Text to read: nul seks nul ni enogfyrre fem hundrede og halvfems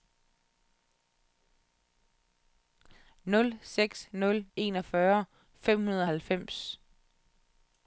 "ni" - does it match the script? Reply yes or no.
no